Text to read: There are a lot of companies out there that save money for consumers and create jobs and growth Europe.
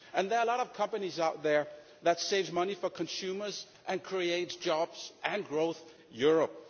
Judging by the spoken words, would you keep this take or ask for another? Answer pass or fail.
pass